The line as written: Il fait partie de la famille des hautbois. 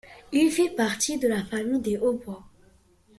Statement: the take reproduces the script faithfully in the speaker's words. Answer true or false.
true